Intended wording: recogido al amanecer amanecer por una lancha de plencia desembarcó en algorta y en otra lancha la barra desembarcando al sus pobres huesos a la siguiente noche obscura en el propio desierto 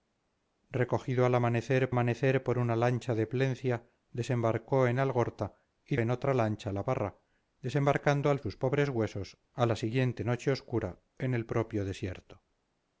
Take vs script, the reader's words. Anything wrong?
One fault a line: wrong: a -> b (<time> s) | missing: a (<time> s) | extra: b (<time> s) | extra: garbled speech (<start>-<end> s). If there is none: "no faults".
no faults